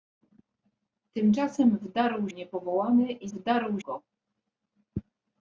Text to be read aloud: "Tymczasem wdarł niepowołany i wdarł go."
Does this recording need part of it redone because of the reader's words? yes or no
no